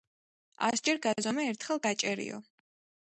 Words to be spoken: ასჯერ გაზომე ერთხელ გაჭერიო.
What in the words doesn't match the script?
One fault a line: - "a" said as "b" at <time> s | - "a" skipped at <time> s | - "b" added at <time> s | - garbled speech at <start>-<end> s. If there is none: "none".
none